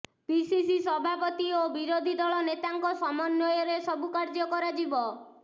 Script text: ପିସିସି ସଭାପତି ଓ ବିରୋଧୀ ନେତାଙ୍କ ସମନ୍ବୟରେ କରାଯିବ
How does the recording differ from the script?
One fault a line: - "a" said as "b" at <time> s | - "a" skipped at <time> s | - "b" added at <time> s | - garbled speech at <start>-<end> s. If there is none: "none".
- "ଦଳ" added at 2.2 s
- "ସବୁ କାର୍ଯ୍ୟ" added at 3.9 s